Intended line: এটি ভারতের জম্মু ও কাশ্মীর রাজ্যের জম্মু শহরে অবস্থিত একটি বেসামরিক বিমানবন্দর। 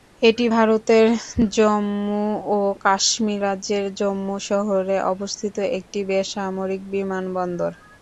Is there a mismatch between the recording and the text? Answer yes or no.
no